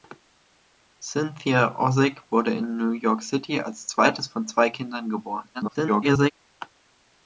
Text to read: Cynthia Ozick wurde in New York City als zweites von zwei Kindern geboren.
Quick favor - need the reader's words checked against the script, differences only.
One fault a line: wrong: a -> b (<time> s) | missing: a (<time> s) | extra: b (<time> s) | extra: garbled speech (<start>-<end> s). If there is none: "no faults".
extra: garbled speech (5.5-6.3 s)